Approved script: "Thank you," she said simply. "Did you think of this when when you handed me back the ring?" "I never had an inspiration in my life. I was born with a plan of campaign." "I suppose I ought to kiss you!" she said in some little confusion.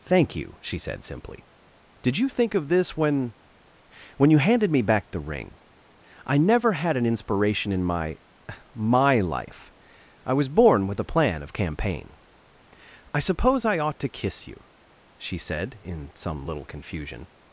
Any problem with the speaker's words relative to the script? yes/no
yes